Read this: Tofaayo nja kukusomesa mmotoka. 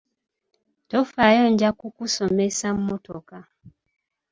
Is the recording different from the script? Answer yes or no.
no